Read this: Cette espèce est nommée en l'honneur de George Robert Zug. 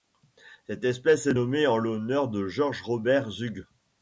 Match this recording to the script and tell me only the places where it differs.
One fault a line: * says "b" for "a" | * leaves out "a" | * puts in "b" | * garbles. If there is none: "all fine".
all fine